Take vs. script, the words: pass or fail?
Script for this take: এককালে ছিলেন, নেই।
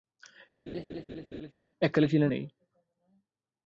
pass